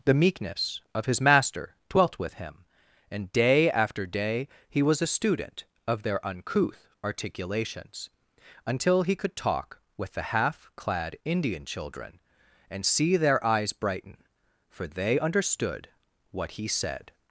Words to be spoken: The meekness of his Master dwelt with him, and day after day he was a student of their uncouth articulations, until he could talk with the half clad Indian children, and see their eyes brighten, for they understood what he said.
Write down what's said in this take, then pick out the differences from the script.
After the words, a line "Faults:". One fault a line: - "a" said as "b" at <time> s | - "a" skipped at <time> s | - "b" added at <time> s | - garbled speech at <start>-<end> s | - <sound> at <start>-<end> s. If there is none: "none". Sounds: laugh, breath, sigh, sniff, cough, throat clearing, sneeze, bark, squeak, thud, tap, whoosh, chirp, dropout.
The meekness of his Master dwelt with him, and day after day he was a student of their uncouth articulations, until he could talk with the half clad Indian children, and see their eyes brighten, for they understood what he said.
Faults:
none